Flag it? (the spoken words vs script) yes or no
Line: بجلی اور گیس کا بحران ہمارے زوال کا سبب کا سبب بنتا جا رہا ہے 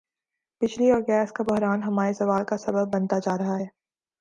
yes